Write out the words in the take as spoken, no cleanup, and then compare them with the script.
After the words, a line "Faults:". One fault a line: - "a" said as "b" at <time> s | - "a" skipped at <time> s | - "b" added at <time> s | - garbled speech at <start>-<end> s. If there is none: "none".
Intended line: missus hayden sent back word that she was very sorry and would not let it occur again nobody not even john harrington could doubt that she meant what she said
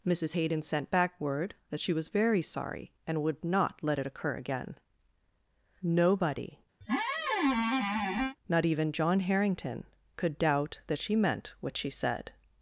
missus hayden sent back word that she was very sorry and would not let it occur again nobody not even john harrington could doubt that she meant what she said
Faults:
none